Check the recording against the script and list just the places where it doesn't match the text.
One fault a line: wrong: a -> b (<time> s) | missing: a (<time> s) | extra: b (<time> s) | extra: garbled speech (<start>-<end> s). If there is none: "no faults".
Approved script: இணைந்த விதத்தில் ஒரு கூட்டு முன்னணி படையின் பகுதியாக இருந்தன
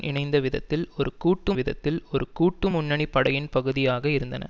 extra: விதத்தில் ஒரு கூட்டு (1.5 s)